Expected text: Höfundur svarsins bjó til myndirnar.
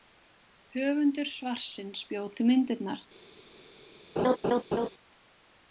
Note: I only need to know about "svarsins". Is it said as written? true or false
true